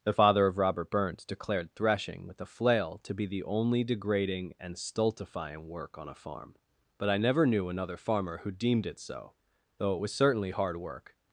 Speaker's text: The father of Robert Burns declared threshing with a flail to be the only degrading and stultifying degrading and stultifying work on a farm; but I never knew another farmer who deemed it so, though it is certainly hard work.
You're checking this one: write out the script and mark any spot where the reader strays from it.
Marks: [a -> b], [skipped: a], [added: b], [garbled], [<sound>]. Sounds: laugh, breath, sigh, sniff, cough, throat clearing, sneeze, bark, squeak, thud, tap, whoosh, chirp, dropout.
The father of Robert Burns declared threshing with a flail to be the only degrading and stultifying [skipped: degrading and stultifying] work on a farm; but I never knew another farmer who deemed it so, though it [is -> was] certainly hard work.